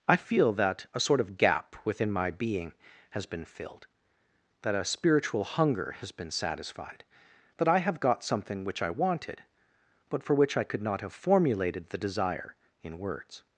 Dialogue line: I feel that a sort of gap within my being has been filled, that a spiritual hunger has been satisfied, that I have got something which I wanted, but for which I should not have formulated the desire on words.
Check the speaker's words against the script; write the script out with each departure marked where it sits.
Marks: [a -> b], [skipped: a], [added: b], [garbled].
I feel that a sort of gap within my being has been filled, that a spiritual hunger has been satisfied, that I have got something which I wanted, but for which I [should -> could] not have formulated the desire [on -> in] words.